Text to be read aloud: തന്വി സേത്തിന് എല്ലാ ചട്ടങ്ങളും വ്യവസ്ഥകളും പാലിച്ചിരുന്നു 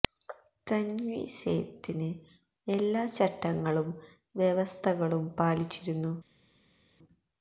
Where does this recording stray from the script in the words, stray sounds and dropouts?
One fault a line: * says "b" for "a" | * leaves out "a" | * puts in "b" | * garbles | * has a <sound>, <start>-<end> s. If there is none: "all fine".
all fine